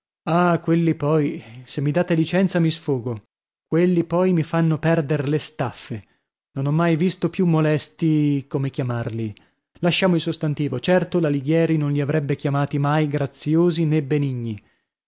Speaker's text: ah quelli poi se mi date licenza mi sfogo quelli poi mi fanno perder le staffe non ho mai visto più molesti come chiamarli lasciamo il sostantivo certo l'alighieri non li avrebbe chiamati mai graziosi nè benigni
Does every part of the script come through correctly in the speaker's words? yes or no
yes